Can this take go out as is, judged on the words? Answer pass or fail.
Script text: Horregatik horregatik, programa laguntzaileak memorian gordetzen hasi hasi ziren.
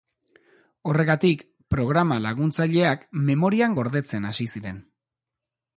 fail